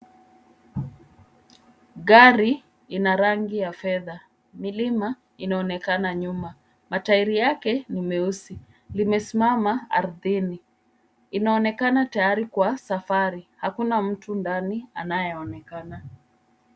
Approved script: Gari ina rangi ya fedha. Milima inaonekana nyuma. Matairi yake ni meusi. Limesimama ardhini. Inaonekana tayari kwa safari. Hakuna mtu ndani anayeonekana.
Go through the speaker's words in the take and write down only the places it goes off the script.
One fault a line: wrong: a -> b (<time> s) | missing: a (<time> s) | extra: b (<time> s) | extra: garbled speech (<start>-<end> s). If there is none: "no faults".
no faults